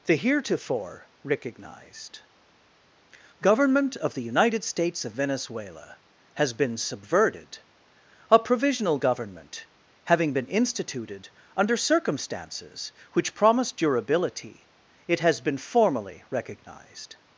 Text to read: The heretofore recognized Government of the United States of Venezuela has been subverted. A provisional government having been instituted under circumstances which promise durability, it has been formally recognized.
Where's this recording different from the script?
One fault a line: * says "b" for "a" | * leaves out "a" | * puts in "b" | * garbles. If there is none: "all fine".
all fine